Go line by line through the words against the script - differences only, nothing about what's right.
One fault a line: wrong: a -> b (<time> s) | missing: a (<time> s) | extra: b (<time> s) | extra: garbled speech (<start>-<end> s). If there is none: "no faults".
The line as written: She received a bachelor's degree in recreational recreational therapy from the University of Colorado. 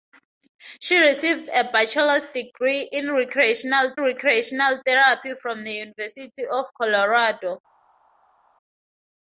no faults